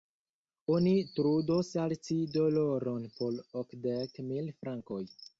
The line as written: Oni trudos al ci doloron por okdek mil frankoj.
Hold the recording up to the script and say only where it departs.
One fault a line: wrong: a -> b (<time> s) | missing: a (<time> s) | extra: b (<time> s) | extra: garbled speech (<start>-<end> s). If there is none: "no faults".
no faults